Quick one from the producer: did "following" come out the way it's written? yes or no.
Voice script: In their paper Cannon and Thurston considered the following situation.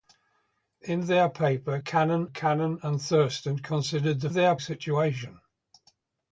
no